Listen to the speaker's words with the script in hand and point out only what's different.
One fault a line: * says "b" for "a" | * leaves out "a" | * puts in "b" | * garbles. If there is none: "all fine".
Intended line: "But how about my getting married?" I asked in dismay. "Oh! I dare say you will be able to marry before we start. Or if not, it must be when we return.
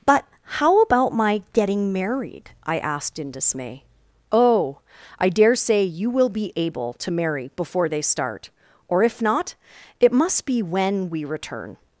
* says "they" for "we"